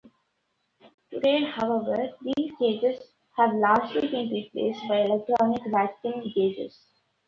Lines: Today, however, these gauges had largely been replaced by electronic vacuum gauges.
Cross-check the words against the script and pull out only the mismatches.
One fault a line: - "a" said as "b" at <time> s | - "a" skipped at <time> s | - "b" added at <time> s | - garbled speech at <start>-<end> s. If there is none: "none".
- "had" said as "have" at 3.4 s